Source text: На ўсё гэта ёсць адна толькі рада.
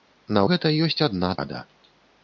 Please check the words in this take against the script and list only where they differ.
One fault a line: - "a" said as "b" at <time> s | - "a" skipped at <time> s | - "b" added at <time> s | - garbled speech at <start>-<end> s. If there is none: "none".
- "ўсё" skipped at 0.4 s
- "толькі" skipped at 1.3 s